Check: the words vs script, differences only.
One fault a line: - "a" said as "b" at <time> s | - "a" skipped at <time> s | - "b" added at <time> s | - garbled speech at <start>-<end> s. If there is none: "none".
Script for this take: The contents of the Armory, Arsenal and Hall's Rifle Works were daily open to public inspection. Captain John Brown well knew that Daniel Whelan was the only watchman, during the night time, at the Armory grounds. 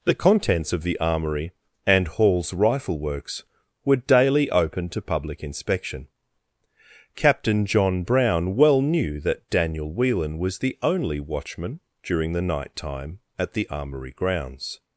- "Arsenal" skipped at 1.5 s